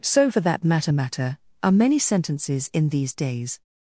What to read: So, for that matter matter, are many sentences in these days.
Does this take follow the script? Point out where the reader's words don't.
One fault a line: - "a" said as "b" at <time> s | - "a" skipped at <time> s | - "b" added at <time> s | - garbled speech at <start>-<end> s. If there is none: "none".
none